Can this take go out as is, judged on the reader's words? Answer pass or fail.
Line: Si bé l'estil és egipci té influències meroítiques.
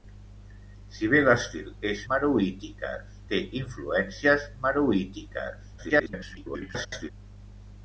fail